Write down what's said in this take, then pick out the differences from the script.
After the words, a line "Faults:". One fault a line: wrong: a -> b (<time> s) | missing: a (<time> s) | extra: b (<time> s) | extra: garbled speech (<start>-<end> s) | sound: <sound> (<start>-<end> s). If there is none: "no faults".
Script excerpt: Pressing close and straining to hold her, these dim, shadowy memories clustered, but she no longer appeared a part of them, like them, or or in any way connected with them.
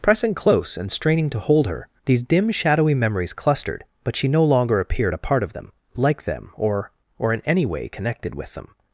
Pressing close and straining to hold her, these dim, shadowy memories clustered, but she no longer appeared a part of them, like them, or or in any way connected with them.
Faults:
no faults